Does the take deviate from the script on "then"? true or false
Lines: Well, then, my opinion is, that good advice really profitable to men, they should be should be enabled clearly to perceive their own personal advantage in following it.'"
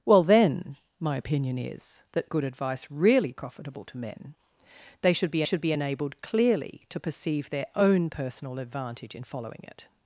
false